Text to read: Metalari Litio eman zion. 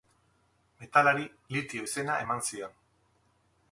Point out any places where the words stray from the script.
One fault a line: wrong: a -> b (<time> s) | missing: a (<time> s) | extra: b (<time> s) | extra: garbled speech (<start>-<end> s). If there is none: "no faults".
extra: izena (1.9 s)